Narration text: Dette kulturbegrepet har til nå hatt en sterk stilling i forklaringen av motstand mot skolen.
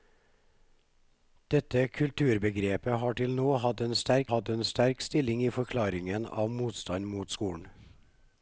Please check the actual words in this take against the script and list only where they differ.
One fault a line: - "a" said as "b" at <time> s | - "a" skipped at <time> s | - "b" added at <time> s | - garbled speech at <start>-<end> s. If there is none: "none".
- "hatt en sterk" added at 4.3 s